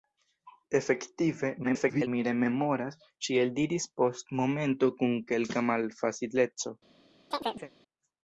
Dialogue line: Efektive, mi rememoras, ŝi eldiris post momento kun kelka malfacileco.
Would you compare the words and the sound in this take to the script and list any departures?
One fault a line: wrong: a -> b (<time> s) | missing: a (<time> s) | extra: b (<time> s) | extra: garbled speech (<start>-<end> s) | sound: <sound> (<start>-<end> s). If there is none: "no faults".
extra: garbled speech (1.6-2.1 s)
sound: chirp (7.3-7.7 s)